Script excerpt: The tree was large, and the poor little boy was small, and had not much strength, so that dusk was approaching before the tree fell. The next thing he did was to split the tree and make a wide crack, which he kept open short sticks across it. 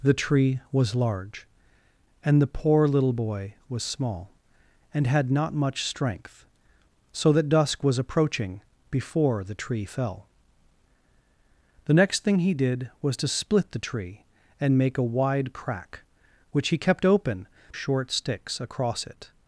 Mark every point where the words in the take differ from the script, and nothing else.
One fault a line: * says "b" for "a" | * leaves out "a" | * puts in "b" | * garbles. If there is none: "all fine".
all fine